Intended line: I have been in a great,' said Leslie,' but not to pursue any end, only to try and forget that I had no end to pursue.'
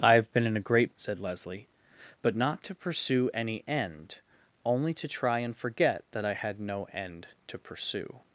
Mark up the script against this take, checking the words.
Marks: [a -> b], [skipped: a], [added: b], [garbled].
I have been in a great,' said Leslie,' but not to pursue any end, only to try and forget that I had no end to pursue.'